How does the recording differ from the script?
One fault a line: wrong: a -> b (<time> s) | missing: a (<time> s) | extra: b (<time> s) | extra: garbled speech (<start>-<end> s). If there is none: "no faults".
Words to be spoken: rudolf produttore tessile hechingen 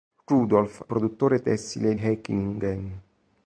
no faults